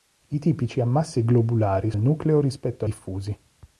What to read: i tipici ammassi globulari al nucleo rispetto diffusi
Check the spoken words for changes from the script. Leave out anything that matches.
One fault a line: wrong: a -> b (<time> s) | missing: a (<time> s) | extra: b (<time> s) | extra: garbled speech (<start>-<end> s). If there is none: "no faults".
no faults